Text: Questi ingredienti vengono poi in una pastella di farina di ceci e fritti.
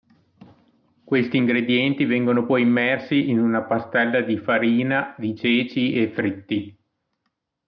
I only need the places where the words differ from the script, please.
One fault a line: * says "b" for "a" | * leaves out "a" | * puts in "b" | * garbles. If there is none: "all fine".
* puts in "immersi"